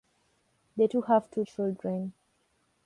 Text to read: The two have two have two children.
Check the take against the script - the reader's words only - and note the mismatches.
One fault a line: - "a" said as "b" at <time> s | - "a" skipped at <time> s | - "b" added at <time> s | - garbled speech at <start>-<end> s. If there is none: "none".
- "have two" skipped at 1.4 s